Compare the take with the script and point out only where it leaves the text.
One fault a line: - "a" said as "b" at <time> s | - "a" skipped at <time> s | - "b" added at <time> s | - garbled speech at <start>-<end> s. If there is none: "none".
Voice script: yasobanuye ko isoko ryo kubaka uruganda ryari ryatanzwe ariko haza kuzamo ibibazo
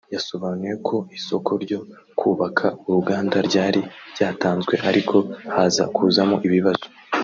none